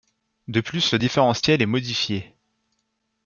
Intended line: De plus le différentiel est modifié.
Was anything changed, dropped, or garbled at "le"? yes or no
no